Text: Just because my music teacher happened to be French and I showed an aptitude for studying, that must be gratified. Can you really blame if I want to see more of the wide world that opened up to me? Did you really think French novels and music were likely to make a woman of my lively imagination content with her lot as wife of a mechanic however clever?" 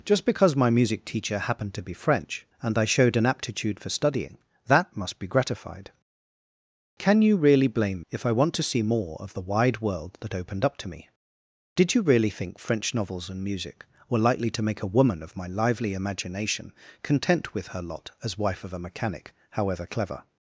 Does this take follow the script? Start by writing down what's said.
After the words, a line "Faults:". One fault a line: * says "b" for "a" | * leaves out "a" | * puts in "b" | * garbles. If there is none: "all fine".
Just because my music teacher happened to be French and I showed an aptitude for studying, that must be gratified. Can you really blame if I want to see more of the wide world that opened up to me? Did you really think French novels and music were likely to make a woman of my lively imagination content with her lot as wife of a mechanic however clever?"
Faults:
all fine